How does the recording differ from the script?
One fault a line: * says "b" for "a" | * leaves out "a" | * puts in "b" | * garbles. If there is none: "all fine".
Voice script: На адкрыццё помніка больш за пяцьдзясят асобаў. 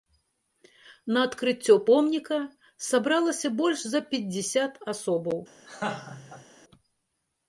* puts in "сабралася"